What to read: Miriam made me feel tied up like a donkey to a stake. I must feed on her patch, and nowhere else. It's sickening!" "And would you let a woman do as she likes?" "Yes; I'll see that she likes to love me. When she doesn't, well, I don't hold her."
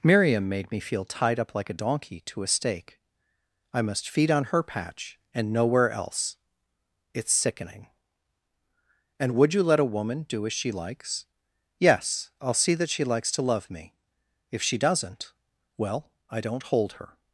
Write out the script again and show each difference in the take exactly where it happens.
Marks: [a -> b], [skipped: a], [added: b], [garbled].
Miriam made me feel tied up like a donkey to a stake. I must feed on her patch, and nowhere else. It's sickening!" "And would you let a woman do as she likes?" "Yes; I'll see that she likes to love me. [When -> If] she doesn't, well, I don't hold her."